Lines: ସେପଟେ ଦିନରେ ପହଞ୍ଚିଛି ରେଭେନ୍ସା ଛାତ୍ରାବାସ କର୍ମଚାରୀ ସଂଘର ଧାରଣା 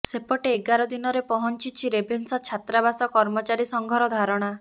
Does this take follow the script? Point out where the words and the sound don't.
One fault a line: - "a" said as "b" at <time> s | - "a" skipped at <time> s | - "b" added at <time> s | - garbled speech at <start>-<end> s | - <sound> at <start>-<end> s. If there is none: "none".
- "ଏଗାର" added at 0.5 s